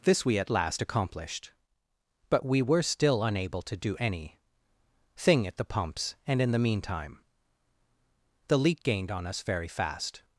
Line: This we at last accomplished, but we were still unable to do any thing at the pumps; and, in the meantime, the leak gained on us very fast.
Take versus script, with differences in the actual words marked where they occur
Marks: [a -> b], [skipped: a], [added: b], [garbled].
This we at last accomplished, but we were still unable to do any thing at the pumps; and, in the meantime, the leak gained on us very fast.